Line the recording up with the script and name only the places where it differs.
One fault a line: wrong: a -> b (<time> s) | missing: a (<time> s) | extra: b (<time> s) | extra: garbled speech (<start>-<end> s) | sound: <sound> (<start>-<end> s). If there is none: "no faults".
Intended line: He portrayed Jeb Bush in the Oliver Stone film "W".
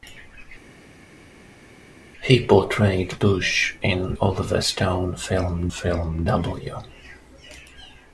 missing: Jeb (3.2 s)
missing: the (4.1 s)
extra: film (5.7 s)